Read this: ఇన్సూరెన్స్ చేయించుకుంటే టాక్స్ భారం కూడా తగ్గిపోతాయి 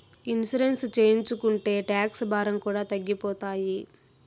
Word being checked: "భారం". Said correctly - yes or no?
yes